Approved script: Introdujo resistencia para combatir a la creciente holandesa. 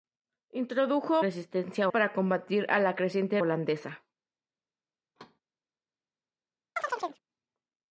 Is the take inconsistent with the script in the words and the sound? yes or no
yes